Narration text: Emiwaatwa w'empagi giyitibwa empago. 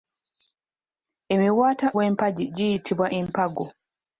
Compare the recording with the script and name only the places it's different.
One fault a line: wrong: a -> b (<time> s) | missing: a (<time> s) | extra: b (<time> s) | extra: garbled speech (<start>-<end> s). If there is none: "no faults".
no faults